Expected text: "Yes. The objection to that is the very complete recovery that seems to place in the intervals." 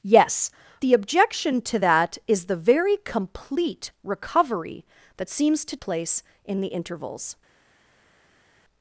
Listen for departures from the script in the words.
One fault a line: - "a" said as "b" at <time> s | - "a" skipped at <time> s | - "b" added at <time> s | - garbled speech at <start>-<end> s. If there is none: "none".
none